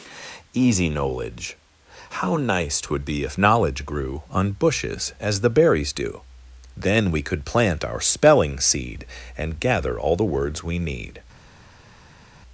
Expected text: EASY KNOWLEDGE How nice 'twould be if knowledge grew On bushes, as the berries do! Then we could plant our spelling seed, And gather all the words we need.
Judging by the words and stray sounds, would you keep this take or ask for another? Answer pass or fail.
pass